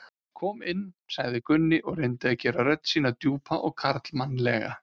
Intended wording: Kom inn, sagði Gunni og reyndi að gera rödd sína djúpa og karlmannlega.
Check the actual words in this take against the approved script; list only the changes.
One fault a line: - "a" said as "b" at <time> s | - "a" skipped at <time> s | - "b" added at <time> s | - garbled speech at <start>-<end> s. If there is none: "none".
none